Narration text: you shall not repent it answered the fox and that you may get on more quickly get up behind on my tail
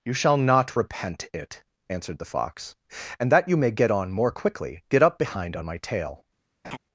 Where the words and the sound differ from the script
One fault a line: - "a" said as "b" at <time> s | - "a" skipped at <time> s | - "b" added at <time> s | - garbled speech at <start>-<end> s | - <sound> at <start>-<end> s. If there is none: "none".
- laugh at 6.6-6.8 s